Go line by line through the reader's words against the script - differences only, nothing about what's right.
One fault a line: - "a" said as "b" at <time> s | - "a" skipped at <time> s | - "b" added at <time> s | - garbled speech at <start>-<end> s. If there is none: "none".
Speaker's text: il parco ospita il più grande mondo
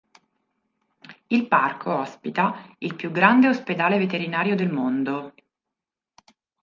- "ospedale veterinario del" added at 3.5 s